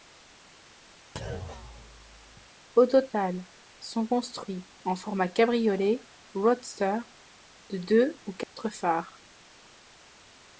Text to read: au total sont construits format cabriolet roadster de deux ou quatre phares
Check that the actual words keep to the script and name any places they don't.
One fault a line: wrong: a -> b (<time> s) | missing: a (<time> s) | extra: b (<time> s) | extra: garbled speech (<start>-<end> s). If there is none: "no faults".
extra: en (4.8 s)